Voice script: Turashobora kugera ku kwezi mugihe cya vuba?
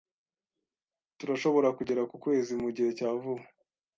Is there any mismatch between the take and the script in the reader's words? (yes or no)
no